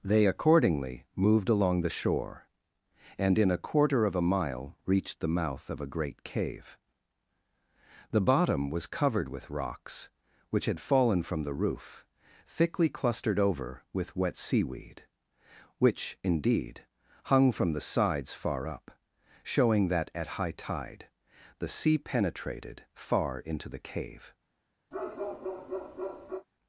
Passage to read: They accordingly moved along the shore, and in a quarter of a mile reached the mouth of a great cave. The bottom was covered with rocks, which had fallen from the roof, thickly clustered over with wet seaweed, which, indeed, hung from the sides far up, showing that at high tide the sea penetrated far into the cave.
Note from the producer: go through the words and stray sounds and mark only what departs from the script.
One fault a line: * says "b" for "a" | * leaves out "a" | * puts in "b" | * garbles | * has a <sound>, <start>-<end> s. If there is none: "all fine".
* has a bark, 24.9-26.5 s